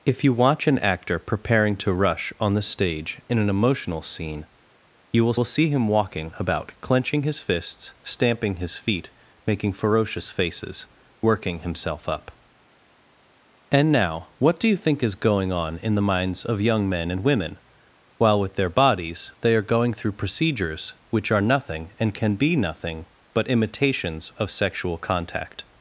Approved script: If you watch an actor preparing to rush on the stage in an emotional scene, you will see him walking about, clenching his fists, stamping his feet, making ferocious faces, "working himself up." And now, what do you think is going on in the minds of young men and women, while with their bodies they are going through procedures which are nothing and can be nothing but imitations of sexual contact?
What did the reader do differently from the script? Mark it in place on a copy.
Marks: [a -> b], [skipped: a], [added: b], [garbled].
If you watch an actor preparing to rush on the stage in an emotional scene, you will [added: will] see him walking about, clenching his fists, stamping his feet, making ferocious faces, "working himself up." And now, what do you think is going on in the minds of young men and women, while with their bodies they are going through procedures which are nothing and can be nothing but imitations of sexual contact?